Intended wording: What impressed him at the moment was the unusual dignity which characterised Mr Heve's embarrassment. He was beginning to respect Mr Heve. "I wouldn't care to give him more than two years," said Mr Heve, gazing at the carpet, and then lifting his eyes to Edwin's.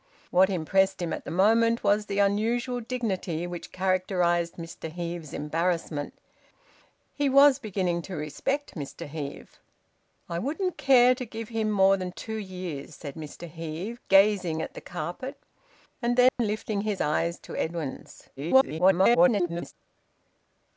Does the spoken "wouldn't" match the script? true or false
true